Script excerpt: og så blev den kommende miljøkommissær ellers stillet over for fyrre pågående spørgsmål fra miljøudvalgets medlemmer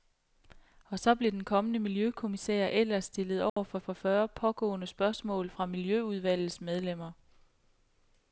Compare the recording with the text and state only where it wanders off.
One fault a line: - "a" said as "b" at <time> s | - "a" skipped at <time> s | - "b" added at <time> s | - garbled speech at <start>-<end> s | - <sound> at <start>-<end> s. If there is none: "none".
- dropout at 3.5-3.6 s
- "for" added at 3.8 s